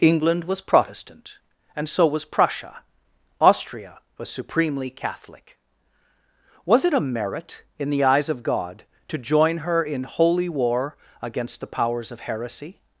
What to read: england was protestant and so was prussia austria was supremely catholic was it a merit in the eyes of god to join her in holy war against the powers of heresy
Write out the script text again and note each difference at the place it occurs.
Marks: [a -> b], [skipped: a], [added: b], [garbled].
england was protestant and so was prussia austria was supremely catholic was it a merit in the eyes of god to join her in holy war against the powers of heresy